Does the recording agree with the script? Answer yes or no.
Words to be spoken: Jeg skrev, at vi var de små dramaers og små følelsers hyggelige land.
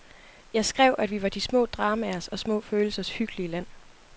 yes